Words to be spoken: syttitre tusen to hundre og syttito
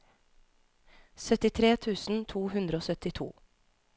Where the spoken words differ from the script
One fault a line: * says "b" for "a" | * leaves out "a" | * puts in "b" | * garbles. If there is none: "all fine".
all fine